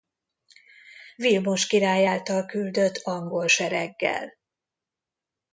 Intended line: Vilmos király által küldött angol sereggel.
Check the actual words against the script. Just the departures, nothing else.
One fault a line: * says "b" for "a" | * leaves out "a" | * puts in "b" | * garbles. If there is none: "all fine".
all fine